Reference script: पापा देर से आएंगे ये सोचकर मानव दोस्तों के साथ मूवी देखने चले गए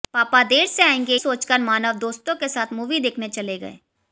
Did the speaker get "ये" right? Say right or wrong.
wrong